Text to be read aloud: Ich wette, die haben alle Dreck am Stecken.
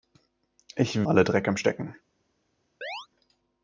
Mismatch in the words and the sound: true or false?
true